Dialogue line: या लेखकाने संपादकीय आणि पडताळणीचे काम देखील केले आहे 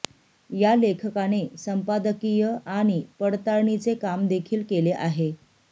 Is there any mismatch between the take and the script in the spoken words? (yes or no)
no